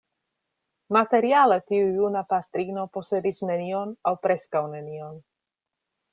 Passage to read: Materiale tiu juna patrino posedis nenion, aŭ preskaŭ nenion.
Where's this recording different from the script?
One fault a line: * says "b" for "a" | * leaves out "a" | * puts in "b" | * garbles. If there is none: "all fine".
all fine